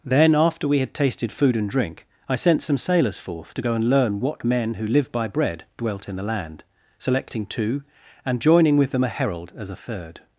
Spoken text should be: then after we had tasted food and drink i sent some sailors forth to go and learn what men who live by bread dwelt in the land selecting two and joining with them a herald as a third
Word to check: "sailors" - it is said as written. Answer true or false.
true